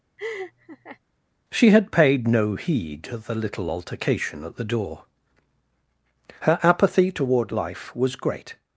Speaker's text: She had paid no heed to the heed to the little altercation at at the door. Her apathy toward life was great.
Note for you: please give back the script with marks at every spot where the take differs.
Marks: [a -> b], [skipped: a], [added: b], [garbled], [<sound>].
[laugh] She had paid no heed to the [skipped: heed to the] little altercation at [skipped: at] the door. Her apathy toward life was great.